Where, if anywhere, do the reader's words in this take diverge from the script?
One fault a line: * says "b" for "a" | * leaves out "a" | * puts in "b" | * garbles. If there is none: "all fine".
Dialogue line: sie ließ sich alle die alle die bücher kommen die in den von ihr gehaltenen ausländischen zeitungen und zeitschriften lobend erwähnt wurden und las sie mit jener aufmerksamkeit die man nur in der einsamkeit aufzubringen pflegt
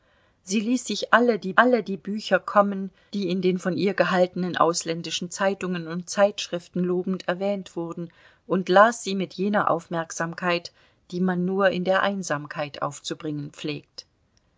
all fine